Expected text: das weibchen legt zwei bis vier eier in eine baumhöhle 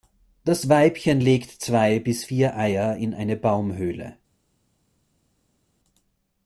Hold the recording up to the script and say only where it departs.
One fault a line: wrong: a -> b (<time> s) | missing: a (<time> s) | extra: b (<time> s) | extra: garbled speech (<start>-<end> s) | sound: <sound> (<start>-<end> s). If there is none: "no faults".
no faults